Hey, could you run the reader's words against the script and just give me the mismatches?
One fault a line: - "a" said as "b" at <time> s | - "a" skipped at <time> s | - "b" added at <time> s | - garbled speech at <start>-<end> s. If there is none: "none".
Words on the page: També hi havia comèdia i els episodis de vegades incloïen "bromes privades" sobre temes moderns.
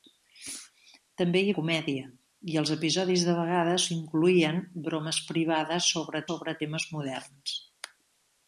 - "havia" skipped at 1.5 s
- "sobre" added at 6.3 s